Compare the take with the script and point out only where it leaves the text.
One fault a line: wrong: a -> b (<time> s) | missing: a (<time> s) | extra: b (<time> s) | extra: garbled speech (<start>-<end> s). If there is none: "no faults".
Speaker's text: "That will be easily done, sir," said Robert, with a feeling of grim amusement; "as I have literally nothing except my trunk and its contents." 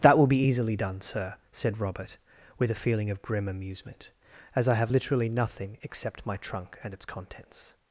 no faults